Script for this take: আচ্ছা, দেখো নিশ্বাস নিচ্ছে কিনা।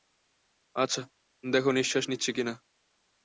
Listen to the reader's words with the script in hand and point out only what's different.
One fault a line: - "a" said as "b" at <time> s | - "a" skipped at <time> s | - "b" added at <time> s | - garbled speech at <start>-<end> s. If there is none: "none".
none